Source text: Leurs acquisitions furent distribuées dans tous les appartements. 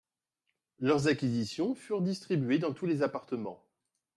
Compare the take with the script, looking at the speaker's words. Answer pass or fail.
pass